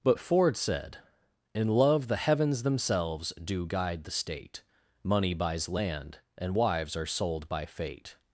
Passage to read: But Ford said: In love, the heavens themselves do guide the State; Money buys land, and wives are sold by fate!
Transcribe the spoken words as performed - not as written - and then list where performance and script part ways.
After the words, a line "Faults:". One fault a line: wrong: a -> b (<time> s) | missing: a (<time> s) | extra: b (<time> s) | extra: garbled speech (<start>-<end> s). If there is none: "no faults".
But Ford said: In love, the heavens themselves do guide the State; Money buys land, and wives are sold by fate!
Faults:
no faults